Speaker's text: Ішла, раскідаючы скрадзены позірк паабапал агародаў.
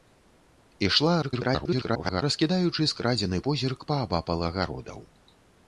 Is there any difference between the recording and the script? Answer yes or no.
yes